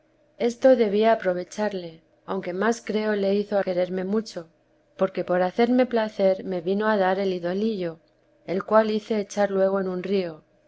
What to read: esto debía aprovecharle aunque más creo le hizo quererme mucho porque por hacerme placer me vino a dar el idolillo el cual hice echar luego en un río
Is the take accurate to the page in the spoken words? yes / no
yes